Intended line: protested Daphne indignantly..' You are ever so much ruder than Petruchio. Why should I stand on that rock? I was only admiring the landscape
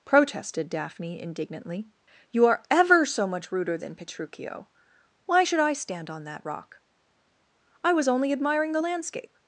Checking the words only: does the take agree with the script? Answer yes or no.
yes